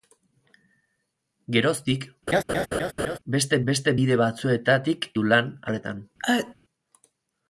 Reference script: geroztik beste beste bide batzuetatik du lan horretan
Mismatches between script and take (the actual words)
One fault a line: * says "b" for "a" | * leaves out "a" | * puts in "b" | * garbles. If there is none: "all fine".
all fine